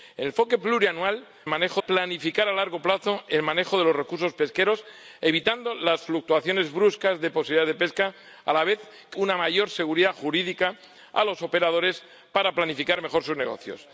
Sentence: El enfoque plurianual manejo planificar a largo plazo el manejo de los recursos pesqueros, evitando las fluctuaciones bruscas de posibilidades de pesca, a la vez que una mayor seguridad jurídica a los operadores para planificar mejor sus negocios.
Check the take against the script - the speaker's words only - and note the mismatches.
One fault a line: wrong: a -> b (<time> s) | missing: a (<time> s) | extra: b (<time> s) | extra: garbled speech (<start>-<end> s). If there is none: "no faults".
no faults